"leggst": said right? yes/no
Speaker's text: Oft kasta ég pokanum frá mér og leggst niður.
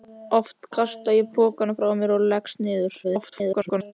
yes